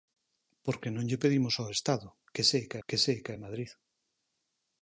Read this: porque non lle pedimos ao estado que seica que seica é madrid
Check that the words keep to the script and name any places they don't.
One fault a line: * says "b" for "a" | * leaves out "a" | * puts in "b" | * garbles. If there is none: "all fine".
all fine